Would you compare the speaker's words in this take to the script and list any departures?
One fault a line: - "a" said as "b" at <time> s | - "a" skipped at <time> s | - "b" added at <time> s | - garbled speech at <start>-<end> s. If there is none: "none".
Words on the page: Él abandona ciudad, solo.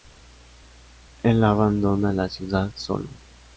- "la" added at 2.1 s